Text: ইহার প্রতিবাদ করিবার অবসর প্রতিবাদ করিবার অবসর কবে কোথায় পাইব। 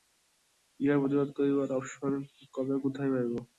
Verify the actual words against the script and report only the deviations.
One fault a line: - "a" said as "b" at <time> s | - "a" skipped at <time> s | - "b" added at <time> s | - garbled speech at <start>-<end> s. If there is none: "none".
- "প্রতিবাদ করিবার অবসর" skipped at 2.1 s